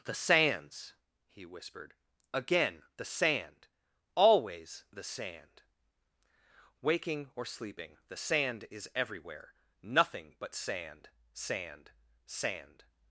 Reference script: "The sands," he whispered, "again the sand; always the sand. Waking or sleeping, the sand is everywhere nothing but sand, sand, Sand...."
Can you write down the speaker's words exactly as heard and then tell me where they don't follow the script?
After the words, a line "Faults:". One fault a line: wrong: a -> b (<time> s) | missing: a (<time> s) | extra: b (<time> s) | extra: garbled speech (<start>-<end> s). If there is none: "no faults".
"The sands," he whispered, "again the sand; always the sand. Waking or sleeping, the sand is everywhere nothing but sand, sand, Sand...."
Faults:
no faults